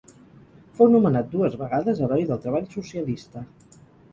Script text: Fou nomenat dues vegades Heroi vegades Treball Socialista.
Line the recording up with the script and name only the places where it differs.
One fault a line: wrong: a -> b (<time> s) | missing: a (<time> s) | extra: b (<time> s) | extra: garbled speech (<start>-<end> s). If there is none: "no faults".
wrong: vegades -> del (2.3 s)